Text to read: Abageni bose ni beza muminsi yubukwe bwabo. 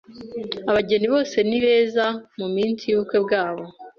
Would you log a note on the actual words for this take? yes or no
no